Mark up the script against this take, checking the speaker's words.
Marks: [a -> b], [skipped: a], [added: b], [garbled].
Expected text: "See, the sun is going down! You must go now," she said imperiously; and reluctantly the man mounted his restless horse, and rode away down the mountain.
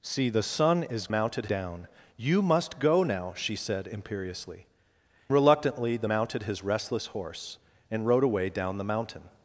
"See, the sun is [going -> mounted] down! You must go now," she said imperiously; [skipped: and] reluctantly the [skipped: man] mounted his restless horse, and rode away down the mountain.